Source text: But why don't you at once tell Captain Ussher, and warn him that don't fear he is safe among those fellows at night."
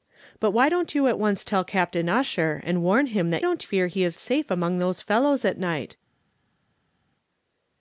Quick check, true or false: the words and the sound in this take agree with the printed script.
true